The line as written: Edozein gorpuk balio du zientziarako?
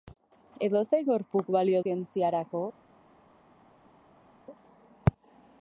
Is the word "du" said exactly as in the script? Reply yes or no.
no